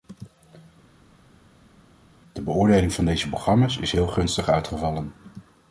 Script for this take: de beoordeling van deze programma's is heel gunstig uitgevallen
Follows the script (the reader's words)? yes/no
yes